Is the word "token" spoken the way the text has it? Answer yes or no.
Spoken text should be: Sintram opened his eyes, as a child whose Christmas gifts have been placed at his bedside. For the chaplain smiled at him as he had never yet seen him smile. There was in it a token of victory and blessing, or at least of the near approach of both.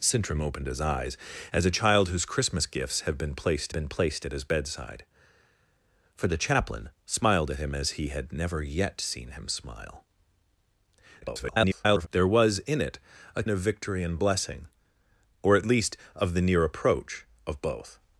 no